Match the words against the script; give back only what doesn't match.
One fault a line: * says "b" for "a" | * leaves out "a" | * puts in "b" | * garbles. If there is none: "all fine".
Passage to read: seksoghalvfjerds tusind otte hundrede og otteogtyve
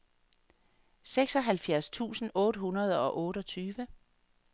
all fine